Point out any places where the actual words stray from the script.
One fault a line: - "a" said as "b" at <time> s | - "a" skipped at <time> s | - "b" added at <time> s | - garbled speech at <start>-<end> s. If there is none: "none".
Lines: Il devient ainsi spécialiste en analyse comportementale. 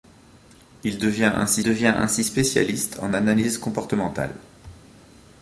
- "devient ainsi" added at 1.6 s